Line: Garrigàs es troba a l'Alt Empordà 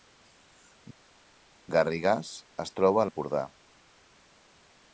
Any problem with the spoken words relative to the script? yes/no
yes